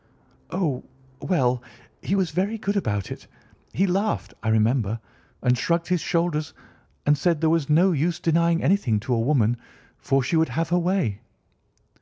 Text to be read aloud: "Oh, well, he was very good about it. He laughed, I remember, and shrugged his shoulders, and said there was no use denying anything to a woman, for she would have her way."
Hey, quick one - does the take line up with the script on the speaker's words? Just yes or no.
yes